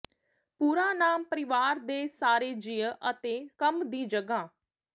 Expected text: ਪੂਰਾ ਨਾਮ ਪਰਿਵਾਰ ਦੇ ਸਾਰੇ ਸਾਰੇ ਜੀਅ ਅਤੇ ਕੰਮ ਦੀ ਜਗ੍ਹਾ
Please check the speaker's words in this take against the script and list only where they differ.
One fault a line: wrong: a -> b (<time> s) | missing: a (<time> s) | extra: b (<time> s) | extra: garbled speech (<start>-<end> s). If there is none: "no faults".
missing: ਸਾਰੇ (2.5 s)